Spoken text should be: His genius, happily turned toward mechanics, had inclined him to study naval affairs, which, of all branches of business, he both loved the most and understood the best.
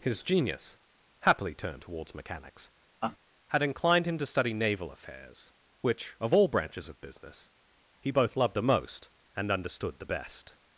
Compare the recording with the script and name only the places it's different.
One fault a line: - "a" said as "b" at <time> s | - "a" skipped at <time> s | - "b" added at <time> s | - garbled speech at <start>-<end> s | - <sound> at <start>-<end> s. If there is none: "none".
- "toward" said as "towards" at 1.8 s
- laugh at 3.0-3.2 s